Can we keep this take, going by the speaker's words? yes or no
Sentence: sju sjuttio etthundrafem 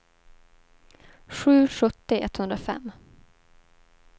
yes